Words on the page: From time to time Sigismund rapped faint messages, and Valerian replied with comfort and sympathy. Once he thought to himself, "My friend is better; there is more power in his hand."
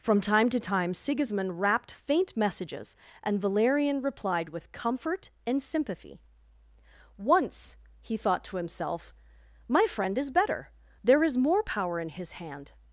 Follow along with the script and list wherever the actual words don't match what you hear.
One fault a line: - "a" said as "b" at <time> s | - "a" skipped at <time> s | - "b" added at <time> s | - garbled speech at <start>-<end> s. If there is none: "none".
none